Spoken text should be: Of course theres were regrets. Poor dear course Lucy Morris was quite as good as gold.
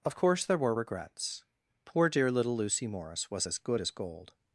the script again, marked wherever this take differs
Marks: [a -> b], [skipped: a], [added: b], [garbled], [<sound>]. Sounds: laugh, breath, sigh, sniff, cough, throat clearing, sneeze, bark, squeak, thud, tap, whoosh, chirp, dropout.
Of course [theres -> there] were regrets. Poor dear [course -> little] Lucy Morris was [skipped: quite] as good as gold.